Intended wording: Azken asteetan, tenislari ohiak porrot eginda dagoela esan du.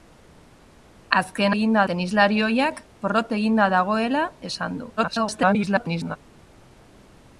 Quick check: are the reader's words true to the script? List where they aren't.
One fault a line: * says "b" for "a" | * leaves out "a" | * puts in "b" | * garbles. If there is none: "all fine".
* says "eginda" for "asteetan"
* garbles